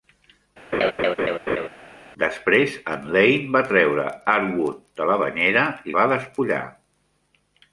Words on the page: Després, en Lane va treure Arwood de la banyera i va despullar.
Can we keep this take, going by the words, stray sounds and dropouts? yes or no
no